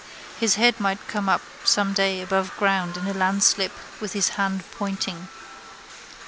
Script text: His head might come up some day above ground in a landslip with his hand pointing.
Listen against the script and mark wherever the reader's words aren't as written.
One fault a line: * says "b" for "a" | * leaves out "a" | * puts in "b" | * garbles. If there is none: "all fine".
all fine